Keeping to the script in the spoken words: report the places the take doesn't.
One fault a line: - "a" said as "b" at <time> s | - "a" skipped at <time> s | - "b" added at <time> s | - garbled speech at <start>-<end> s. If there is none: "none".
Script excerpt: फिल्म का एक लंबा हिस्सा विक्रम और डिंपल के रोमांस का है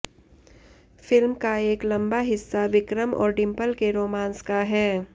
none